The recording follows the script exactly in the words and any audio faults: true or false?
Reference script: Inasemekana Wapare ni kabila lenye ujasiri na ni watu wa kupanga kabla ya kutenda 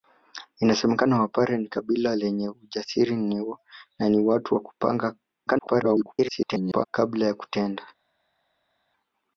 false